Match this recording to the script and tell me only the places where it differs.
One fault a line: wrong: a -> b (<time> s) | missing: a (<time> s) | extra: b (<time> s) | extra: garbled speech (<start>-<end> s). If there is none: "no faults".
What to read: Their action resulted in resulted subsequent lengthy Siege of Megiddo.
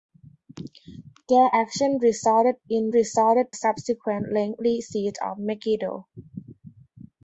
no faults